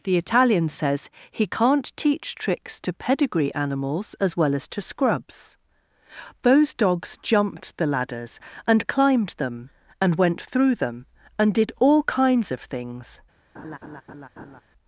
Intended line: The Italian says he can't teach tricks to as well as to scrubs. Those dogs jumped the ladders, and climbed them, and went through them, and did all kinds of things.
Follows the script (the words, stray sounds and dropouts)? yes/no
no